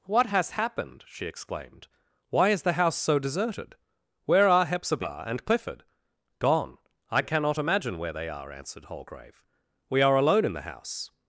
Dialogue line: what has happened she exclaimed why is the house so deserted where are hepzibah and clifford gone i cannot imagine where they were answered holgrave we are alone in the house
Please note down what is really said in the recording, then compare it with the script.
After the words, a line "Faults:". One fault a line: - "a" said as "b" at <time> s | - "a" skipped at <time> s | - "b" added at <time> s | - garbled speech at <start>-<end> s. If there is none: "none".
what has happened she exclaimed why is the house so deserted where are hepzibah and clifford gone i cannot imagine where they are answered holgrave we are alone in the house
Faults:
- "were" said as "are" at 8.3 s